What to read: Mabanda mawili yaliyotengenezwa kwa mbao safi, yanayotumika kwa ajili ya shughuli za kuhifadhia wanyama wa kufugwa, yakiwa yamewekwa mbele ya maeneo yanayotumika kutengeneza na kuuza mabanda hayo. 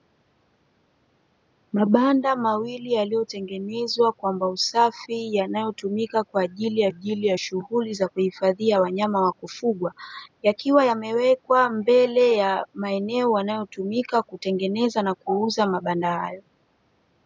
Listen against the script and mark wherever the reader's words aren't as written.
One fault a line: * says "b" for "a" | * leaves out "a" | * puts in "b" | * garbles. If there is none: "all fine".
* puts in "ajili ya"